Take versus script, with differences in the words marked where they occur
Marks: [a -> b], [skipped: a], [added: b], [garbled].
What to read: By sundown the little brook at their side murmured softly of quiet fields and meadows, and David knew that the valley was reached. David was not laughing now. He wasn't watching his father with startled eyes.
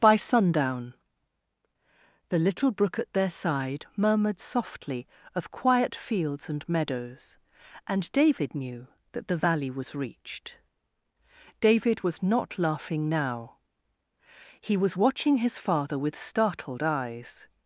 By sundown the little brook at their side murmured softly of quiet fields and meadows, and David knew that the valley was reached. David was not laughing now. He [wasn't -> was] watching his father with startled eyes.